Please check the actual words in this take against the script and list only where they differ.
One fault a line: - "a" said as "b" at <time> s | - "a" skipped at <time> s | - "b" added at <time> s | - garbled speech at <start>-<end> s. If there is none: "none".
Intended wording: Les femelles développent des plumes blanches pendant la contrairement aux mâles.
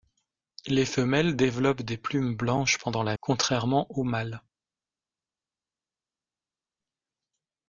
none